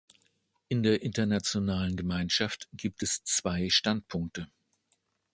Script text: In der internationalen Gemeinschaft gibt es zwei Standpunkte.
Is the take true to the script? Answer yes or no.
yes